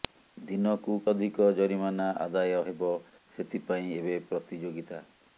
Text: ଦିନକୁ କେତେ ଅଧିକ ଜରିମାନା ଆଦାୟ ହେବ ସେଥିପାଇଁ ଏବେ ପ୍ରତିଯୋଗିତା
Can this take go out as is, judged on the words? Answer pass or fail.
fail